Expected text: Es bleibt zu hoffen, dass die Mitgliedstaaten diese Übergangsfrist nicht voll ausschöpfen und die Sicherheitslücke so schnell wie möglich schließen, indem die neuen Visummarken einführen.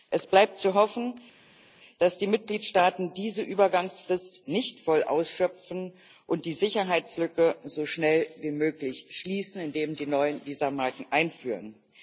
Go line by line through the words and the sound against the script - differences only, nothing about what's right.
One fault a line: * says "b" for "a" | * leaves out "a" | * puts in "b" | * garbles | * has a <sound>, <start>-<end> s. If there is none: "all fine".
all fine